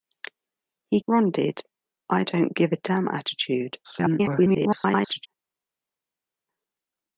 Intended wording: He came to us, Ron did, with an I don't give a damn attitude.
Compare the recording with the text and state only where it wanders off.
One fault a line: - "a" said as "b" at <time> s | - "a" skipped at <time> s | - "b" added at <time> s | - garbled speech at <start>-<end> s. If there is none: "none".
- "came to us" skipped at 1.0 s
- "with an" skipped at 1.6 s
- garbled speech at 3.8-5.3 s